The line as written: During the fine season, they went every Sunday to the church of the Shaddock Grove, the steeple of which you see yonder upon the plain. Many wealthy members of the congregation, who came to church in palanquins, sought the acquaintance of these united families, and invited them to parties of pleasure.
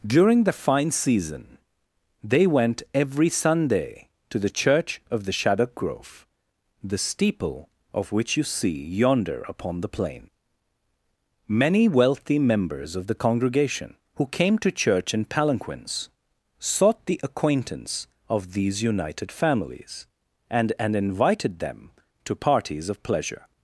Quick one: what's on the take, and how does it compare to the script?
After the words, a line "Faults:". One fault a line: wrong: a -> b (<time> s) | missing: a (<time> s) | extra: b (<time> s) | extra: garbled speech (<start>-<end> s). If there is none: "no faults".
During the fine season, they went every Sunday to the church of the Shaddock Grove, the steeple of which you see yonder upon the plain. Many wealthy members of the congregation, who came to church in palanquins, sought the acquaintance of these united families, and and invited them to parties of pleasure.
Faults:
extra: and (20.8 s)